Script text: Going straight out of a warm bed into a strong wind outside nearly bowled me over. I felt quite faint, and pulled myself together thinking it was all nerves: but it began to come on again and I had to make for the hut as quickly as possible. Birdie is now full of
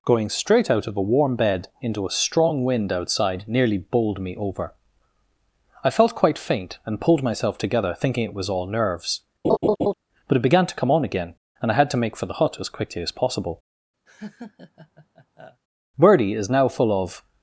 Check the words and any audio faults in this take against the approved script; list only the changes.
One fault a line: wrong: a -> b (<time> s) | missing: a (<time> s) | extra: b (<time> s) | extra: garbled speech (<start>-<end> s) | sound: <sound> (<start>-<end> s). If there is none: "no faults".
sound: laugh (9.4-9.9 s)
sound: laugh (14.1-15.6 s)